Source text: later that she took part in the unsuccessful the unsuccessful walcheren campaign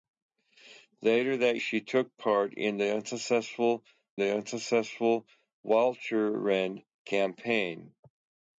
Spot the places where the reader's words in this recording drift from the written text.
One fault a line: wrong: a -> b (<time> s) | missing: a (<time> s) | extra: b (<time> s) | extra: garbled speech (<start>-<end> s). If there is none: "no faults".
no faults